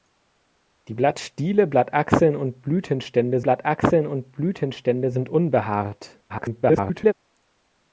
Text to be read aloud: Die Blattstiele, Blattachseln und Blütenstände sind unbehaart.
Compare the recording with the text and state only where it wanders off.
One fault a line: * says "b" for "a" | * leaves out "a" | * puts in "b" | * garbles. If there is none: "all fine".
* puts in "Blattachseln und Blütenstände"
* garbles